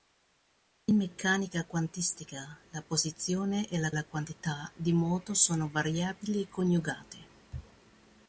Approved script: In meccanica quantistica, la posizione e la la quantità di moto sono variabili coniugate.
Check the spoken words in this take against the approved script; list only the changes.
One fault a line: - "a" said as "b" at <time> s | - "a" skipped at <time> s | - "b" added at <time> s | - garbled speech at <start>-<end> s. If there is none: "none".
none